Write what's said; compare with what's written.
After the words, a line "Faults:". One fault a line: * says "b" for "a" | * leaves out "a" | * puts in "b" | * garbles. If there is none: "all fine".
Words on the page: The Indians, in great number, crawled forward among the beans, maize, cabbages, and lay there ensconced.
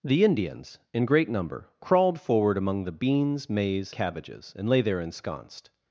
The Indians, in great number, crawled forward among the beans, maize, cabbages, and lay there ensconced.
Faults:
all fine